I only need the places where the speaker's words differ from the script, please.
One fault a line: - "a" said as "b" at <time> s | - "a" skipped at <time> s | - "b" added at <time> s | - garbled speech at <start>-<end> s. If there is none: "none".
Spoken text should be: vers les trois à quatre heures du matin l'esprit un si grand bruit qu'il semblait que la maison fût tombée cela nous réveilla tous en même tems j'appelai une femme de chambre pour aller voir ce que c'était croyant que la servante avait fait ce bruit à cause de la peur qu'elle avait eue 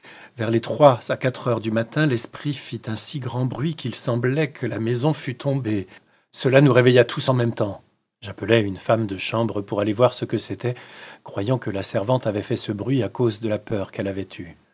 - "fit" added at 2.5 s